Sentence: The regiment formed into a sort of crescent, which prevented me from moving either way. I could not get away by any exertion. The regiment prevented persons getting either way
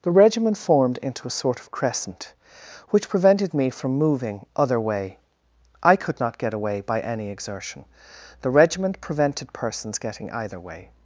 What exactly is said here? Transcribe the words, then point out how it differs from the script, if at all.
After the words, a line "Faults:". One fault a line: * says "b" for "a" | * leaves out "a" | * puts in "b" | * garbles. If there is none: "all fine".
The regiment formed into a sort of crescent, which prevented me from moving other way. I could not get away by any exertion. The regiment prevented persons getting either way
Faults:
* says "other" for "either"